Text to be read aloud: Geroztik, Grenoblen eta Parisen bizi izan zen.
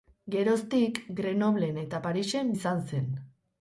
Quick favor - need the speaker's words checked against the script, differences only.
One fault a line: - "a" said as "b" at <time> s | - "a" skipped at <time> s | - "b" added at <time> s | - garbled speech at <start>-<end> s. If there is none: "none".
- "bizi" skipped at 2.5 s